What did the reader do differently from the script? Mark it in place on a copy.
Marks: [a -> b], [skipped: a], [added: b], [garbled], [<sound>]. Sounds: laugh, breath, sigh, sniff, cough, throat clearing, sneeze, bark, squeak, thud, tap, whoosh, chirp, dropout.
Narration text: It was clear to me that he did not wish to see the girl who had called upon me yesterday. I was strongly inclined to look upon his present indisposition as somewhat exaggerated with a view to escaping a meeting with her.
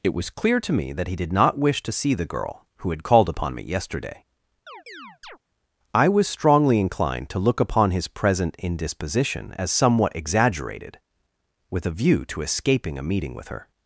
It was clear to me that he did not wish to see the girl who had called upon me yesterday. [chirp] I was strongly inclined to look upon his present indisposition as somewhat exaggerated with a view to escaping a meeting with her.